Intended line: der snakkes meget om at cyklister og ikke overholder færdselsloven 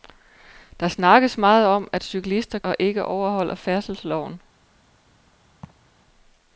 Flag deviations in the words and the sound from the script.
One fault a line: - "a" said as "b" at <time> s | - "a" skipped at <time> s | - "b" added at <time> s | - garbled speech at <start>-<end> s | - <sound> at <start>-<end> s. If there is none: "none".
- laugh at 5.6-5.9 s